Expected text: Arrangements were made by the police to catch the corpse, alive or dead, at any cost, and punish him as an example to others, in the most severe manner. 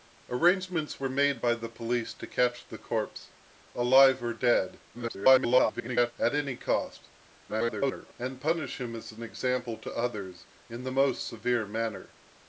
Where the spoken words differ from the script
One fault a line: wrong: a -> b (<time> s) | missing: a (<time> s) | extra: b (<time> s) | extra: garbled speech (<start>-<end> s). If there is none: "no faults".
extra: garbled speech (4.9-6.1 s)
extra: garbled speech (7.5-8.1 s)